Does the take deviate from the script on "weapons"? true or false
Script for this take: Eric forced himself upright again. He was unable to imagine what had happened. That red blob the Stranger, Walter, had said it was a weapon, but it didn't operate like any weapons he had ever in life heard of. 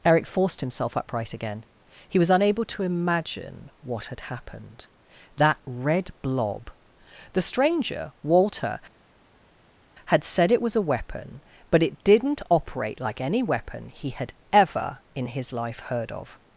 true